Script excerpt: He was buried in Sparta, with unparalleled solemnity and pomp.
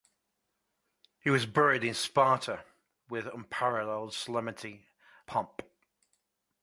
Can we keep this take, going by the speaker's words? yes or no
no